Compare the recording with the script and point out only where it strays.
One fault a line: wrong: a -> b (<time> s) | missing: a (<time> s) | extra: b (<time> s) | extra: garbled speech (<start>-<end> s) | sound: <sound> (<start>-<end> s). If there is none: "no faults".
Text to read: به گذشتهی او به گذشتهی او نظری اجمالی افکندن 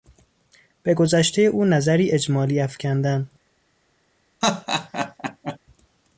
missing: به گذشتهی او (1.6 s)
sound: laugh (4.4-5.6 s)